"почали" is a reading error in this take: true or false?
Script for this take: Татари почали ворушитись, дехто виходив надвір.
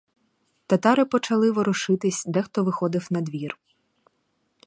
false